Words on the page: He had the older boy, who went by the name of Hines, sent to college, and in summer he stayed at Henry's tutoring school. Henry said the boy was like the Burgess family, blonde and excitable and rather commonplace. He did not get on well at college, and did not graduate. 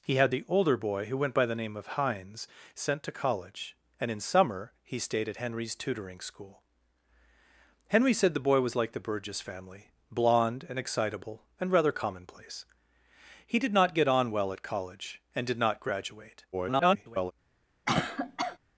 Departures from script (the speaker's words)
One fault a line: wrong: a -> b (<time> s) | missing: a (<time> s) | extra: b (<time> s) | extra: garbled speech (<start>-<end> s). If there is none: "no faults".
extra: garbled speech (16.5-17.3 s)